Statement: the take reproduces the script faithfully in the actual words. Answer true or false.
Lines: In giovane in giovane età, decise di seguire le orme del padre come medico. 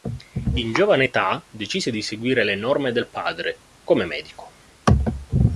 false